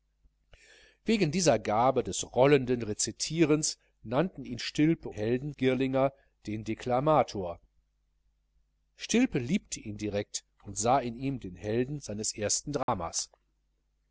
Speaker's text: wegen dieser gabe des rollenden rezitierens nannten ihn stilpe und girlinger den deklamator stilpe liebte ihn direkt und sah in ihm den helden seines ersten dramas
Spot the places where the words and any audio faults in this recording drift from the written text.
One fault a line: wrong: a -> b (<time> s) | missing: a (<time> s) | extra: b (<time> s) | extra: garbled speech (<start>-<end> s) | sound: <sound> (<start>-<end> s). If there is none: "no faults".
wrong: und -> helden (5.1 s)
sound: dropout (12.8-12.9 s)